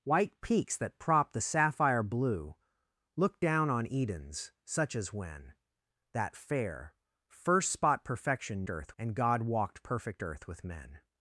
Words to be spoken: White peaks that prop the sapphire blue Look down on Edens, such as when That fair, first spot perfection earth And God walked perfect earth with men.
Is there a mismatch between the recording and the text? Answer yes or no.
no